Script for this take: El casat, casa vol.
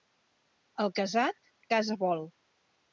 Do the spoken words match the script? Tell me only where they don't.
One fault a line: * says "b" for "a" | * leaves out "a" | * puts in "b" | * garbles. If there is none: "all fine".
all fine